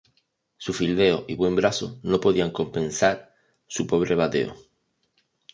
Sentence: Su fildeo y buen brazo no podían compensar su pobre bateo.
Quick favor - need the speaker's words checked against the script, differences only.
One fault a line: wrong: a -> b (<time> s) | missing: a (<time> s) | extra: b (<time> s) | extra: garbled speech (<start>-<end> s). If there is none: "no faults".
no faults